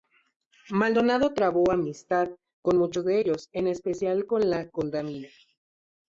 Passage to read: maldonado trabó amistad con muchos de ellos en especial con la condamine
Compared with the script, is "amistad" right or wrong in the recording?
right